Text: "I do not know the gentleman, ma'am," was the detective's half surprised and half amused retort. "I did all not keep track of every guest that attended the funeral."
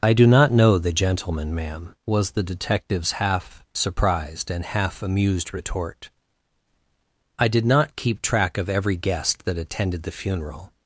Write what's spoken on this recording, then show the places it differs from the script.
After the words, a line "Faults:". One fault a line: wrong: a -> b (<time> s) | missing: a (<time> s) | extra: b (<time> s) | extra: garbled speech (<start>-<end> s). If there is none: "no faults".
"I do not know the gentleman, ma'am," was the detective's half surprised and half amused retort. "I did not keep track of every guest that attended the funeral."
Faults:
missing: all (7.7 s)